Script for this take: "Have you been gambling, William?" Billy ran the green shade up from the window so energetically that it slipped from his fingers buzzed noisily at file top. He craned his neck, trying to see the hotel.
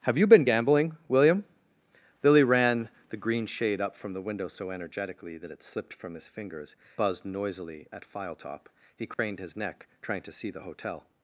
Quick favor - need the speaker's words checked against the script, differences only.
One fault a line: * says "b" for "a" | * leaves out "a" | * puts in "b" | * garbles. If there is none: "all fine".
all fine